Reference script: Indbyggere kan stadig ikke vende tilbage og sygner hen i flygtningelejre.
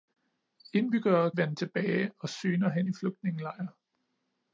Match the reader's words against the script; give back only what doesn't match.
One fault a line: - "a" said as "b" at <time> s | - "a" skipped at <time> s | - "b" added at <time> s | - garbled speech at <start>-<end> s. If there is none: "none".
- "kan stadig ikke" skipped at 1.3 s